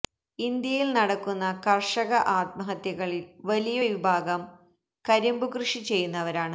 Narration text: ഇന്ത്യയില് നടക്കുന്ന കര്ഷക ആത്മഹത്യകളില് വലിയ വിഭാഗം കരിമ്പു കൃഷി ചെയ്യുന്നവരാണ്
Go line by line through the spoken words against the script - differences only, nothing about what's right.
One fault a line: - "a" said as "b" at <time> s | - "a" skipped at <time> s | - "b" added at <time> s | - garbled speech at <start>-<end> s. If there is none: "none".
none